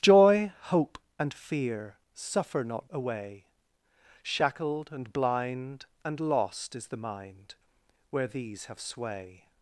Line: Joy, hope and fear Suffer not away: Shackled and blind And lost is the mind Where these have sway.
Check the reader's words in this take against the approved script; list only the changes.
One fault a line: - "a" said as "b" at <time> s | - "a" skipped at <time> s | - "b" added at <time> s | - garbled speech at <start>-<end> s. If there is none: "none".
none